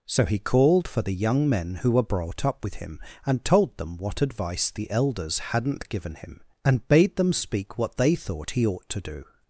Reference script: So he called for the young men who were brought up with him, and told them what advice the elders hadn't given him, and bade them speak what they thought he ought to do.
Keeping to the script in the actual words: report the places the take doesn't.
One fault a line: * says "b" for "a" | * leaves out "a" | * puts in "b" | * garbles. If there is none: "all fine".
all fine